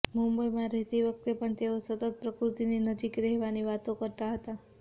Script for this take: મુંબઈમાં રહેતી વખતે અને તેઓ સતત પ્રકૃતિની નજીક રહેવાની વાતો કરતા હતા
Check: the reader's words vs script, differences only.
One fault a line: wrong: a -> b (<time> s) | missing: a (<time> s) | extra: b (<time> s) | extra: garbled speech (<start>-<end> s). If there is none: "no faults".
wrong: અને -> પણ (1.4 s)